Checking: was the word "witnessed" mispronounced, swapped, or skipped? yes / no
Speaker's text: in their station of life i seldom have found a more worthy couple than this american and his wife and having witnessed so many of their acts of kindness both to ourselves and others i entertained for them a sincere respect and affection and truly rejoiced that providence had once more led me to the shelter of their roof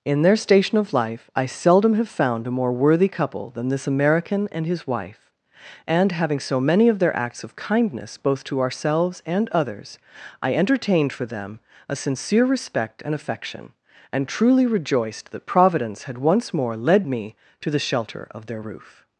yes